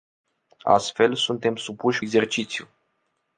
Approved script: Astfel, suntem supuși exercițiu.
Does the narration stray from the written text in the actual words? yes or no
no